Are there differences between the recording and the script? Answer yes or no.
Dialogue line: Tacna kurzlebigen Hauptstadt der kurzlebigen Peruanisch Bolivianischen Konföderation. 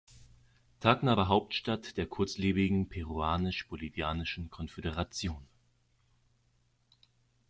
yes